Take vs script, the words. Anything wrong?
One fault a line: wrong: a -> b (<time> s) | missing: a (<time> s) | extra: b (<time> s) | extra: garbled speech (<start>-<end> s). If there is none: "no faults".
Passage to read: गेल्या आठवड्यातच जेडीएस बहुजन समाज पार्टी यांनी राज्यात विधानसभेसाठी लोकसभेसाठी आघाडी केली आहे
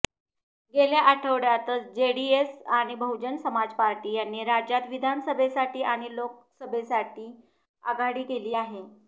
extra: आणि (2.7 s)
extra: आणि (5.9 s)